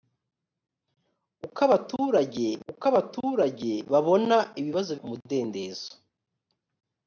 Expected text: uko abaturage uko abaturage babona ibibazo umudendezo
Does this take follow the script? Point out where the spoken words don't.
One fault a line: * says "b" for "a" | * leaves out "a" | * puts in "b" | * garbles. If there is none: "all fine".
all fine